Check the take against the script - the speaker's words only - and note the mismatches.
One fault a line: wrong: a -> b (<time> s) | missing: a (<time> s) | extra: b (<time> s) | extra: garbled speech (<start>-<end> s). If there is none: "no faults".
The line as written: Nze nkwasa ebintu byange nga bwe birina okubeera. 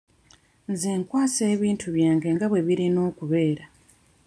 no faults